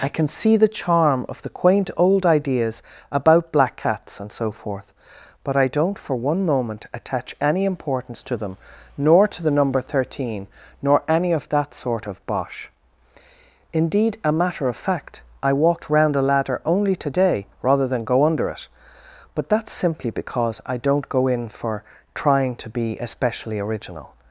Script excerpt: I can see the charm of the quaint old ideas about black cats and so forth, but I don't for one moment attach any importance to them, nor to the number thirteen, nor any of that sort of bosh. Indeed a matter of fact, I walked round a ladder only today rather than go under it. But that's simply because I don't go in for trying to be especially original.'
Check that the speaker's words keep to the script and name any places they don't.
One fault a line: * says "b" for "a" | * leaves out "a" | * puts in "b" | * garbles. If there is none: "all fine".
all fine